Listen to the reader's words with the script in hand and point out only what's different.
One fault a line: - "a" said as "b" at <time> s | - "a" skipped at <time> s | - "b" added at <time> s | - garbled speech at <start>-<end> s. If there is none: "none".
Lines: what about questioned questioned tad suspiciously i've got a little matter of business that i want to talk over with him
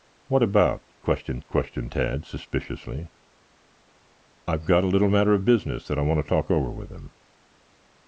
none